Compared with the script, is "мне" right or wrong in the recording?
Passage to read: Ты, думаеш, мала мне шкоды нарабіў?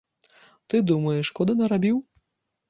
wrong